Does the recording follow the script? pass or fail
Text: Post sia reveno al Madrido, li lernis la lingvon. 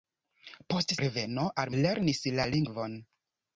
fail